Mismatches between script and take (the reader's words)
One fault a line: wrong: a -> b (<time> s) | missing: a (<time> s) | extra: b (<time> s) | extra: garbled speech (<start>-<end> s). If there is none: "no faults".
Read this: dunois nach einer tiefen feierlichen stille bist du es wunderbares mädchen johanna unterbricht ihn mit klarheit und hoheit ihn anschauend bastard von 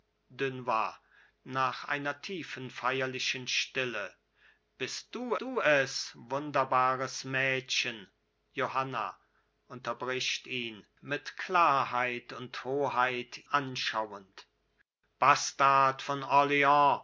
extra: du (5.4 s)
missing: ihn (13.5 s)